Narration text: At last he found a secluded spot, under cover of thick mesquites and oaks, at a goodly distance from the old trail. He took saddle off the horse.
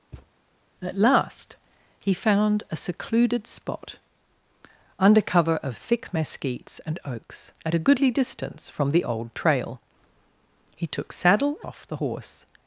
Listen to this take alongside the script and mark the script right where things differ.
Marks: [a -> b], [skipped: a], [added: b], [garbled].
At last he found a secluded spot, under cover of thick mesquites and oaks, at a goodly distance from the old trail. He took saddle off the horse.